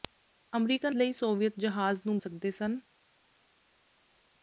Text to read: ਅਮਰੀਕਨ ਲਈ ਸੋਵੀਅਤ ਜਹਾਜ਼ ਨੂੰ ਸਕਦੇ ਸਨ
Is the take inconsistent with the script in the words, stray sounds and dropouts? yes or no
no